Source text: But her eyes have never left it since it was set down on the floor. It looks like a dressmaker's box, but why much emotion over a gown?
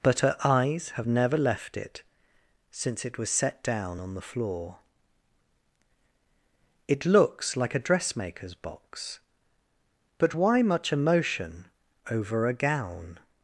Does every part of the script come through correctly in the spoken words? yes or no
yes